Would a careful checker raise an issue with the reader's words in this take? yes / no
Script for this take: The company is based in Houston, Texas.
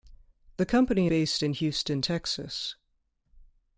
yes